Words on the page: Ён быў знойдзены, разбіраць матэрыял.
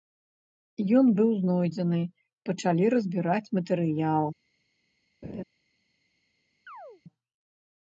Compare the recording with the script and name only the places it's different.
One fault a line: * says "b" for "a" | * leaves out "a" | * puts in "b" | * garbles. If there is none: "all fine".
* puts in "пачалі"